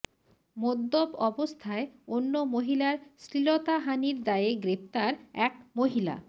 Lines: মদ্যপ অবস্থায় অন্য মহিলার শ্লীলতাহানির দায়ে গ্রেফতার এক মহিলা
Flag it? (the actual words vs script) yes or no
no